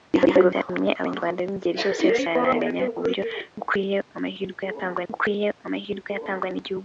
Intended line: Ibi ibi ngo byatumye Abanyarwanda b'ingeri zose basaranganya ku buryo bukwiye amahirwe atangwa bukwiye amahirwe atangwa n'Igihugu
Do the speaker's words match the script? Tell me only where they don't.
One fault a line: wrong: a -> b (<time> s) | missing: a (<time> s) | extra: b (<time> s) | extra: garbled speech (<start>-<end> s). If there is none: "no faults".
no faults